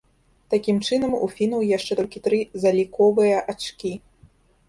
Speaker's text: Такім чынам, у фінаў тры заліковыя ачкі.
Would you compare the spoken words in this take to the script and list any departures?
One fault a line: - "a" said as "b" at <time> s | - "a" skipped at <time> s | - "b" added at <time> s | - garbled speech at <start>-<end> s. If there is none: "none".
- "яшчэ толькі" added at 1.8 s